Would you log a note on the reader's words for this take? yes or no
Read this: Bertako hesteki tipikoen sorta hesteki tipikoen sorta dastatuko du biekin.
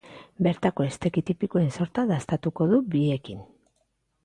yes